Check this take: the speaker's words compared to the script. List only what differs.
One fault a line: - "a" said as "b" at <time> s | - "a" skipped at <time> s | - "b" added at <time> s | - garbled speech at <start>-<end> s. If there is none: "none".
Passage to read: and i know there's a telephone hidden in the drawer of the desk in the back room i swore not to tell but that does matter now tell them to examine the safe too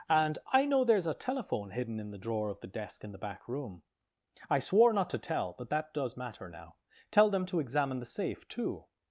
none